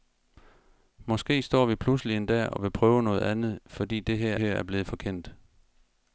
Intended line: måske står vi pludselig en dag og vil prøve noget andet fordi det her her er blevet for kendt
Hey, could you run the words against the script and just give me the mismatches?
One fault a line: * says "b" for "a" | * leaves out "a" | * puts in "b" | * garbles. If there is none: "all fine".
all fine